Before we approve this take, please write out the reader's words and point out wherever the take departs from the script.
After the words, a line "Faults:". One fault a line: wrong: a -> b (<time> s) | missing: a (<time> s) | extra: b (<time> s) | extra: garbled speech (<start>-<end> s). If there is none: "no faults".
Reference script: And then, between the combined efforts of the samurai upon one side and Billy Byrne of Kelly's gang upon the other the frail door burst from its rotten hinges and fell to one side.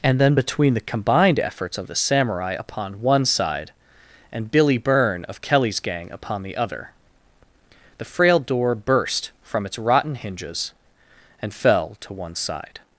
And then, between the combined efforts of the samurai upon one side and Billy Byrne of Kelly's gang upon the other the frail door burst from its rotten hinges and fell to one side.
Faults:
no faults